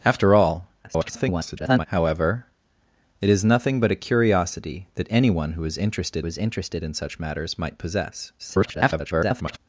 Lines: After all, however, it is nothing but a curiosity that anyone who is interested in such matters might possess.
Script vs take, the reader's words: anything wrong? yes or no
yes